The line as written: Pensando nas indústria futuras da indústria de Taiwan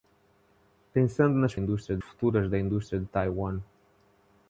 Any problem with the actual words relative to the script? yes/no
no